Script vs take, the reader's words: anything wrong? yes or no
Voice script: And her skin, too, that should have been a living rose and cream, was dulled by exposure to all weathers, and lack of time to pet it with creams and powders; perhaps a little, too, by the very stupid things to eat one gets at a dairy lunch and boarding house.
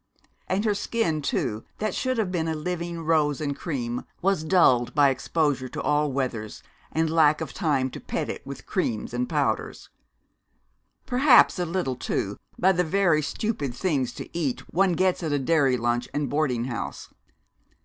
no